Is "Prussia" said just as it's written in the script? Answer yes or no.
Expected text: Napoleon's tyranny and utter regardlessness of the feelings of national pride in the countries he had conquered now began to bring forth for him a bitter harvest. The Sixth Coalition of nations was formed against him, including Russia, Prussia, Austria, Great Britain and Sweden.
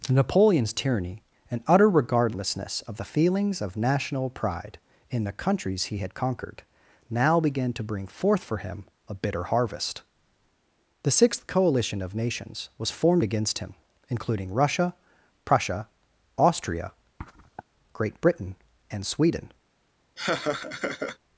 yes